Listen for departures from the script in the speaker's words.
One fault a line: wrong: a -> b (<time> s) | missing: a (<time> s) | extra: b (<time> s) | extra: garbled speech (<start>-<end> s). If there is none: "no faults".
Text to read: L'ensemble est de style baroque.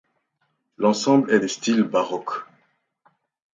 no faults